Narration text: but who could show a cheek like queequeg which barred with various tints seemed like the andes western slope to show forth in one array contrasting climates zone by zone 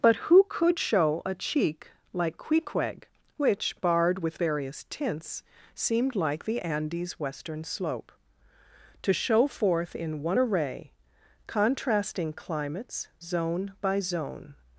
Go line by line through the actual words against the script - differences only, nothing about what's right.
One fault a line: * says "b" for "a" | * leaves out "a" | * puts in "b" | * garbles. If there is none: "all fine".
all fine